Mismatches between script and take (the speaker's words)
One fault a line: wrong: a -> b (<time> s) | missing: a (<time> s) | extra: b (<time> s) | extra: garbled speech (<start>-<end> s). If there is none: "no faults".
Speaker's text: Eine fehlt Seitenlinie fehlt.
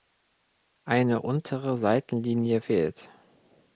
wrong: fehlt -> untere (1.2 s)